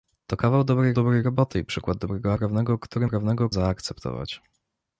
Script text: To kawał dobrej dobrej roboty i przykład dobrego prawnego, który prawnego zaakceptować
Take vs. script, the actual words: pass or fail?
pass